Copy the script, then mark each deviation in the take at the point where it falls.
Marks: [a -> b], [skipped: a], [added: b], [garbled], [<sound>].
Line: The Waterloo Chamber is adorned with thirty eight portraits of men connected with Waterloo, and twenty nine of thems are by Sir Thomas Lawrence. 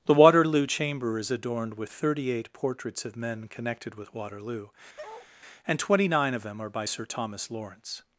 The Waterloo Chamber is adorned with thirty eight portraits of men connected with Waterloo, [bark] and twenty nine of [thems -> them] are by Sir Thomas Lawrence.